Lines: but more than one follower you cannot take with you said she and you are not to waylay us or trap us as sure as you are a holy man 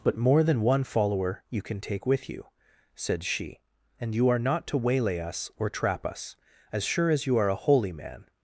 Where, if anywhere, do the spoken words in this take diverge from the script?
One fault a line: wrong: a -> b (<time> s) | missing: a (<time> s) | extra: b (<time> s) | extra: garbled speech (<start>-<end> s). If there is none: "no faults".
wrong: cannot -> can (1.6 s)